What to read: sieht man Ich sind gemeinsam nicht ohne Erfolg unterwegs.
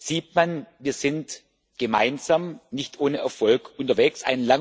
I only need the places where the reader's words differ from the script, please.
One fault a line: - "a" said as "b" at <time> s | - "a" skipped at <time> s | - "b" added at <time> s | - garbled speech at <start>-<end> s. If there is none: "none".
- "Ich" said as "Wir" at 0.8 s